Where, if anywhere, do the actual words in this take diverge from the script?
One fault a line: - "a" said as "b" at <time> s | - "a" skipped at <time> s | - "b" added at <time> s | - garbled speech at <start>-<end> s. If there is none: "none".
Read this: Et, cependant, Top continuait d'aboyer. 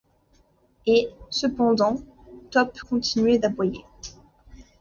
none